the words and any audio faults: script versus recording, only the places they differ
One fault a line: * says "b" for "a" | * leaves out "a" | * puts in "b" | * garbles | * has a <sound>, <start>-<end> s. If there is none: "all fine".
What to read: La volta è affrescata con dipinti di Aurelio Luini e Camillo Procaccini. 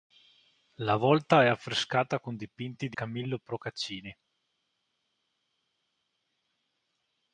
* leaves out "Aurelio Luini e"